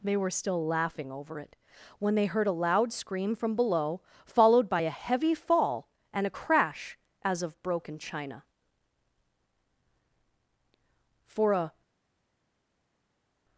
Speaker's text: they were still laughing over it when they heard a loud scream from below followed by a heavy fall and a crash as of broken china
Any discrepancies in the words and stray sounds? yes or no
yes